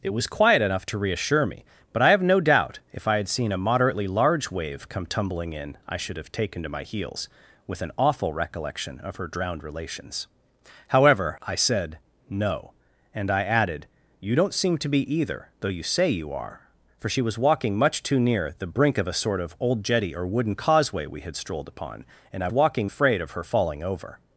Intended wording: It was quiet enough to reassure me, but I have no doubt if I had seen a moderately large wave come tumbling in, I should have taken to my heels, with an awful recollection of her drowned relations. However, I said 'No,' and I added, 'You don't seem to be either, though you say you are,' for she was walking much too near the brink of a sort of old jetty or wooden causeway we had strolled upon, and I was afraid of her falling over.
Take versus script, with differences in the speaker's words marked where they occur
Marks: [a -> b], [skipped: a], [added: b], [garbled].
It was quiet enough to reassure me, but I have no doubt if I had seen a moderately large wave come tumbling in, I should have taken to my heels, with an awful recollection of her drowned relations. However, I said 'No,' and I added, 'You don't seem to be either, though you say you are,' for she was walking much too near the brink of a sort of old jetty or wooden causeway we had strolled upon, and I [was -> walking] afraid of her falling over.